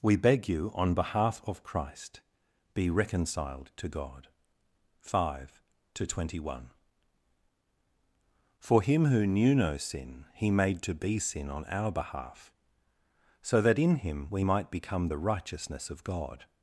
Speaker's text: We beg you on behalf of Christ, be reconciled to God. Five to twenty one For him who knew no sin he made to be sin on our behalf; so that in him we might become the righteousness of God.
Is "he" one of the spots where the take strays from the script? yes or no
no